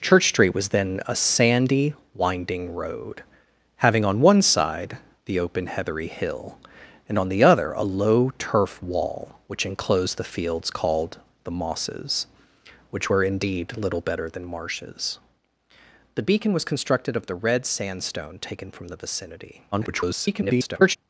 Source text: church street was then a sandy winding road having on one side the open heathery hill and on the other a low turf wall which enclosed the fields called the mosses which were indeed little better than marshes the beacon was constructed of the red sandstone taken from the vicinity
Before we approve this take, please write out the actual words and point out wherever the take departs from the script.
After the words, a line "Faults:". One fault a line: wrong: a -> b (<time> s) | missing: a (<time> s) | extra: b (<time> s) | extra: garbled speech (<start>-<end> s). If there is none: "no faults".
church street was then a sandy winding road having on one side the open heathery hill and on the other a low turf wall which enclosed the fields called the mosses which were indeed little better than marshes the beacon was constructed of the red sandstone taken from the vicinity [garbled]
Faults:
extra: garbled speech (19.7-21.0 s)